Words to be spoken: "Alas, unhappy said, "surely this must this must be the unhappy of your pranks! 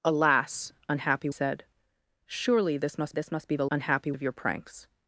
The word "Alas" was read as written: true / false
true